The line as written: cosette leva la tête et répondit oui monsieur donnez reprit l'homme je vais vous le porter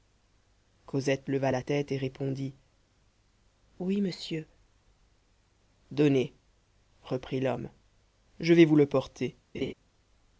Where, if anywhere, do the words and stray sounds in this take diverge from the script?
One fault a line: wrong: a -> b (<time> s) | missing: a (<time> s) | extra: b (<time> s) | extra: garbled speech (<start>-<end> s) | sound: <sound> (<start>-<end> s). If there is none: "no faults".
sound: laugh (9.5-9.7 s)